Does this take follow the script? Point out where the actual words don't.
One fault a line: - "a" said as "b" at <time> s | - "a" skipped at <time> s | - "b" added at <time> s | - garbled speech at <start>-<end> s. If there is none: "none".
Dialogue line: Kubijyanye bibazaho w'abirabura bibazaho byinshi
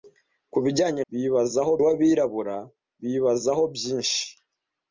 none